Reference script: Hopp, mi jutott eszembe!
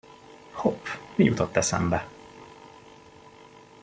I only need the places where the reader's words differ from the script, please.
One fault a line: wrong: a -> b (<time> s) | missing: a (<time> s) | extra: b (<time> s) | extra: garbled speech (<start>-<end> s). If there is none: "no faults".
no faults